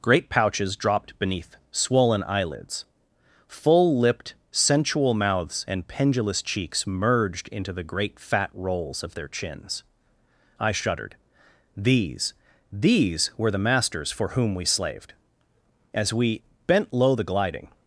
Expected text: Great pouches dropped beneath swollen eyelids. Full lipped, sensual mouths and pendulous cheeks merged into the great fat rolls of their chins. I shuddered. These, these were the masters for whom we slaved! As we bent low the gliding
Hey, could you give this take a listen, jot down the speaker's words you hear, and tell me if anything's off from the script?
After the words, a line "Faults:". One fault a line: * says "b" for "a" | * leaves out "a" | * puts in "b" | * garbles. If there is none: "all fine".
Great pouches dropped beneath swollen eyelids. Full lipped, sensual mouths and pendulous cheeks merged into the great fat rolls of their chins. I shuddered. These, these were the masters for whom we slaved! As we bent low the gliding
Faults:
all fine